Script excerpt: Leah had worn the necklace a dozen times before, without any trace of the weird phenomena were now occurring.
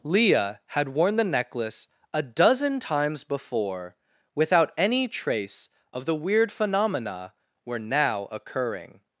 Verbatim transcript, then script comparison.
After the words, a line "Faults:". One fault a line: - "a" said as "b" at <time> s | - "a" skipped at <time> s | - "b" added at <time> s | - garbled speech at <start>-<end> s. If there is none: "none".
Leah had worn the necklace a dozen times before, without any trace of the weird phenomena were now occurring.
Faults:
none